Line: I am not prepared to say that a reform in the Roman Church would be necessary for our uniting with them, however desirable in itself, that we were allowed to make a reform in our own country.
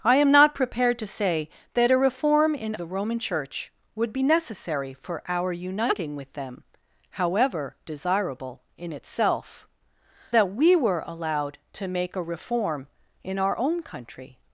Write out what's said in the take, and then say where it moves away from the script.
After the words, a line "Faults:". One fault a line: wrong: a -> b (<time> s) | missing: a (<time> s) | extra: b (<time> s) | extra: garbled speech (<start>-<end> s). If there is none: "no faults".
I am not prepared to say that a reform in the Roman Church would be necessary for our uniting with them, however desirable in itself, that we were allowed to make a reform in our own country.
Faults:
no faults